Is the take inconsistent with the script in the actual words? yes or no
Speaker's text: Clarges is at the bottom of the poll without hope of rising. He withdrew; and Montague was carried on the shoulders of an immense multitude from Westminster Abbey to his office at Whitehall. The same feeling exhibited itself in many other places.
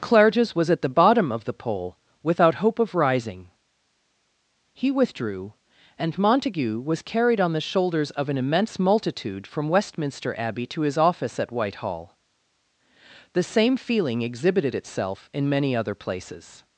yes